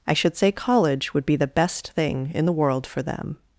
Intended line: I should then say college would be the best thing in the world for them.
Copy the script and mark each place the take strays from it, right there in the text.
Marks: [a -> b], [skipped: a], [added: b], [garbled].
I should [skipped: then] say college would be the best thing in the world for them.